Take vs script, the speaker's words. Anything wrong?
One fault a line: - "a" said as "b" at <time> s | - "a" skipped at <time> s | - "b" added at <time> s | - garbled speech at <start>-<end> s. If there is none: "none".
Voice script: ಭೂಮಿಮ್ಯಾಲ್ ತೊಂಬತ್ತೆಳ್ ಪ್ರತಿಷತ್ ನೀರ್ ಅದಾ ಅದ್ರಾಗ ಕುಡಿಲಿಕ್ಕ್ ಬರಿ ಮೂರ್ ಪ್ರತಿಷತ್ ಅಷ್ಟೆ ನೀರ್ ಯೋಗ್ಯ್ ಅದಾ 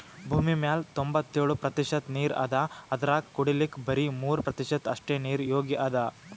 none